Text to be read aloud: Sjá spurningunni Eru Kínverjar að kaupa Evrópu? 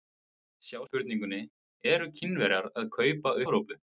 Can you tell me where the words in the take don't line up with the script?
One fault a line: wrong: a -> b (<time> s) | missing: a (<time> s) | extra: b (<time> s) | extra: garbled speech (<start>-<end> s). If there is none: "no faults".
no faults